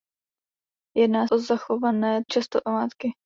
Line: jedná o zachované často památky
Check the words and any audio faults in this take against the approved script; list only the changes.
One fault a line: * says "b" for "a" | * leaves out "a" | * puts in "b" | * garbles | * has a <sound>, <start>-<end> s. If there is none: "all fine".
all fine